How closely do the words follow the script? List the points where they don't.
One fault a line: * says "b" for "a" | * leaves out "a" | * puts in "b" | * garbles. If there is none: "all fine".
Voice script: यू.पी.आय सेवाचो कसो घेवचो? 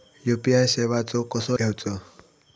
all fine